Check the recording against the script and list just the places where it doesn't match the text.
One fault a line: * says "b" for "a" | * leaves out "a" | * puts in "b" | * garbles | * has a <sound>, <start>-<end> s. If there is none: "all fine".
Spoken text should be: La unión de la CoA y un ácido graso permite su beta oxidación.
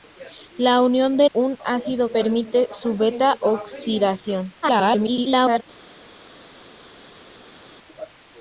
* leaves out "la CoA y"
* leaves out "graso"
* garbles